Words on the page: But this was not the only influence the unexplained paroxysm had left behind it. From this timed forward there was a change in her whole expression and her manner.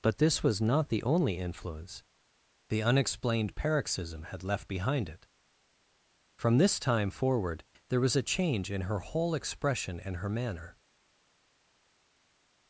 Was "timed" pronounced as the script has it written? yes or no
no